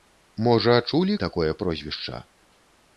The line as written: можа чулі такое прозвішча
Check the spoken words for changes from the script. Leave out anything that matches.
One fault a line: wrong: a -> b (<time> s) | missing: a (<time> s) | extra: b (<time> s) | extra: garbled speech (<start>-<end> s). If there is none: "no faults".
no faults